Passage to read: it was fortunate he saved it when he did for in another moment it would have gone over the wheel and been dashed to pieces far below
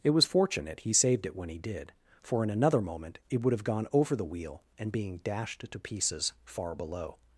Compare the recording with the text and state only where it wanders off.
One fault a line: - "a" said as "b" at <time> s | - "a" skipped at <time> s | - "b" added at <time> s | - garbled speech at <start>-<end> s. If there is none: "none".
- "been" said as "being" at 4.9 s